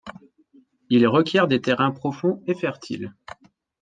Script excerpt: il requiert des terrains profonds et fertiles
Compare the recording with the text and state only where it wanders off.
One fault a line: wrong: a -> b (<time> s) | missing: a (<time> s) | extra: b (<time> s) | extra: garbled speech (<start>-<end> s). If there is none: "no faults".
no faults